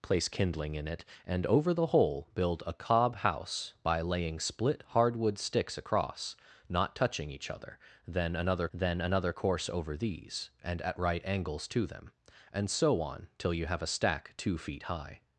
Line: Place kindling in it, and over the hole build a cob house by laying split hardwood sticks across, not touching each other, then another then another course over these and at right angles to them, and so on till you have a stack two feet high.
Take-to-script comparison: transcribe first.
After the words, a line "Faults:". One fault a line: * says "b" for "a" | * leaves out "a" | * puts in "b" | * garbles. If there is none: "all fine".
Place kindling in it, and over the hole build a cob house by laying split hardwood sticks across, not touching each other, then another then another course over these and at right angles to them, and so on till you have a stack two feet high.
Faults:
all fine